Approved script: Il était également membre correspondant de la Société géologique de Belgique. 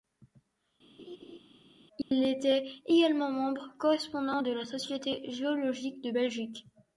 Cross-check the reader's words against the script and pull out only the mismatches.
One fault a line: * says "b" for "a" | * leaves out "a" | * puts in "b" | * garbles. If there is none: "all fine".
all fine